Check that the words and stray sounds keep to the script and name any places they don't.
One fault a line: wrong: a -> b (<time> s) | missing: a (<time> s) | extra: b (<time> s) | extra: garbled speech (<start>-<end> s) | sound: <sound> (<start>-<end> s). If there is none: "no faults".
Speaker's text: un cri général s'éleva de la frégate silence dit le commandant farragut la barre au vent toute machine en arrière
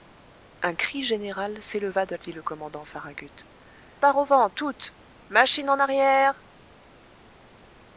missing: la frégate silence (2.1 s)
missing: la (3.5 s)